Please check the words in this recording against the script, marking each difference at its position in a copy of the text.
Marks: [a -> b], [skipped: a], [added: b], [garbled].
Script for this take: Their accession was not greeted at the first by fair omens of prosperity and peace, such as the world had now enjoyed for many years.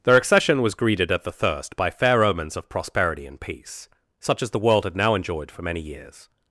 Their accession was [skipped: not] greeted at the [first -> thirst] by fair omens of prosperity and peace, such as the world had now enjoyed for many years.